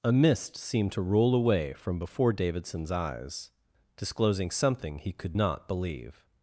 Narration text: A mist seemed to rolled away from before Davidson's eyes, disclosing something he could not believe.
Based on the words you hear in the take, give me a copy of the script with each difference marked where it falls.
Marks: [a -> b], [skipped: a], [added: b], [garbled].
A mist seemed to [rolled -> roll] away from before Davidson's eyes, disclosing something he could not believe.